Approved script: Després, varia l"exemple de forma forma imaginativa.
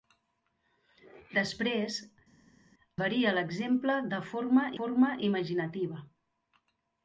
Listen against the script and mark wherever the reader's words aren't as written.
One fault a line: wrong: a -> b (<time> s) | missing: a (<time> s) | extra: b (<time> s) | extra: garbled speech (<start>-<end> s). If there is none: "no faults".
no faults